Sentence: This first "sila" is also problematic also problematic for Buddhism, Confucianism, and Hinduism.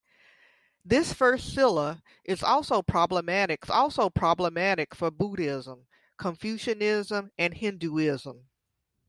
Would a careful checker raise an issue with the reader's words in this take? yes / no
no